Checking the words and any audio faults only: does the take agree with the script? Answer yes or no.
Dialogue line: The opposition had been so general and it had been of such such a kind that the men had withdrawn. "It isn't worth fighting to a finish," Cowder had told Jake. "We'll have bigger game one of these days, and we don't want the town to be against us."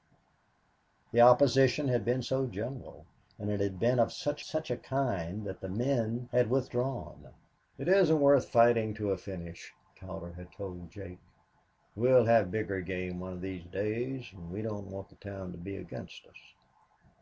yes